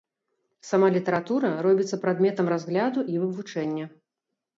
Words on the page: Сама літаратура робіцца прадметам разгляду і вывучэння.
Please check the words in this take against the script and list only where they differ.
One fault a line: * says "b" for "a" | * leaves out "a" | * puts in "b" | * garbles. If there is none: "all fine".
all fine